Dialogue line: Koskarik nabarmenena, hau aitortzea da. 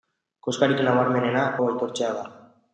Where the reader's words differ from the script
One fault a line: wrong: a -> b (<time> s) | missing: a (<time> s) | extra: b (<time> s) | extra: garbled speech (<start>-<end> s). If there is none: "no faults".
no faults